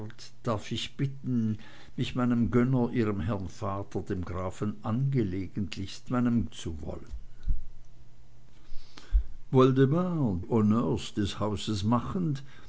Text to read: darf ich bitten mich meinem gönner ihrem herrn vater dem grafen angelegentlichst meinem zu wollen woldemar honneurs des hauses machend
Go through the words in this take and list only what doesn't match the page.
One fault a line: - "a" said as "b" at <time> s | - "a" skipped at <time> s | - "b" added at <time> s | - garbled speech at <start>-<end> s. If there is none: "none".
none